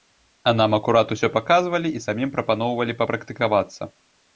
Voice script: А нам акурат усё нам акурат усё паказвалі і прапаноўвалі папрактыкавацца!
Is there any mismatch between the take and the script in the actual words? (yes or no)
yes